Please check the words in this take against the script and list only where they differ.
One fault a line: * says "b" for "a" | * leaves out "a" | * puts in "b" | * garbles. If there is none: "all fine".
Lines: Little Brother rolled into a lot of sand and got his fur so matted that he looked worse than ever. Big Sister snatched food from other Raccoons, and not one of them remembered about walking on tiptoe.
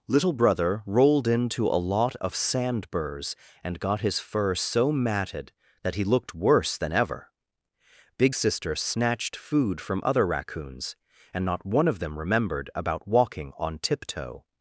* puts in "burrs"